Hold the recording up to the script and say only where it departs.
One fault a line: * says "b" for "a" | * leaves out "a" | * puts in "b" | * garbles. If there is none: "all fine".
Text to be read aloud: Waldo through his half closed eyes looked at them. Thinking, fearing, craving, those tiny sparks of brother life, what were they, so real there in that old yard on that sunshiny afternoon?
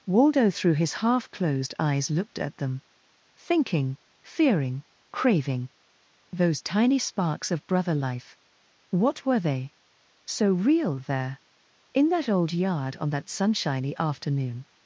all fine